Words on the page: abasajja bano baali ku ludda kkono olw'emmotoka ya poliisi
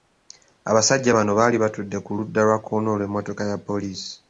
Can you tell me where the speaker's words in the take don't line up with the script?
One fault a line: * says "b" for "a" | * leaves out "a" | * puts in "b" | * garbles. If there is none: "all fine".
* puts in "batudde"
* puts in "lwa"